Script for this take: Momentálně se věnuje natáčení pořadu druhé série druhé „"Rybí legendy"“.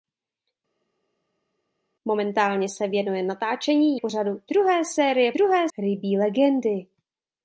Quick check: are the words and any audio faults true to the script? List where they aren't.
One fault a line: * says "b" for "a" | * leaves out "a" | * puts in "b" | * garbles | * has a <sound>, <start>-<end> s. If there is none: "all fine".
all fine